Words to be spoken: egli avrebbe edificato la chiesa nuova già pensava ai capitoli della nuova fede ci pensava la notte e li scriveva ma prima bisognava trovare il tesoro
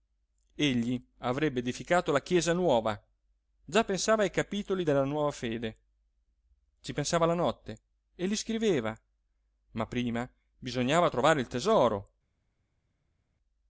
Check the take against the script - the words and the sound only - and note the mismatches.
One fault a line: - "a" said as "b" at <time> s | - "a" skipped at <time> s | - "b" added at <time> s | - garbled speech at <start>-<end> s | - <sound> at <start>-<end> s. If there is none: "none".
none